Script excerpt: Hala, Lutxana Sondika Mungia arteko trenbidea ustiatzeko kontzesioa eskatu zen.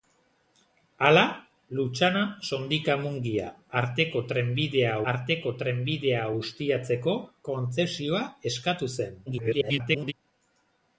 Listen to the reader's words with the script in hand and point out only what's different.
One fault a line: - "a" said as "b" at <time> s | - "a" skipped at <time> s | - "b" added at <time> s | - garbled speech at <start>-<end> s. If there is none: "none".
- "arteko trenbidea" added at 5.1 s
- garbled speech at 9.3-10.1 s